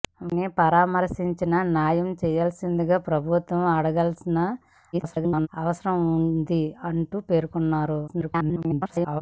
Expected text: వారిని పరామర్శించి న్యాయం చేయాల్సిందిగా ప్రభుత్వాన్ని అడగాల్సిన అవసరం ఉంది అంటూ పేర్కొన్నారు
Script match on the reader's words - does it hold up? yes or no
no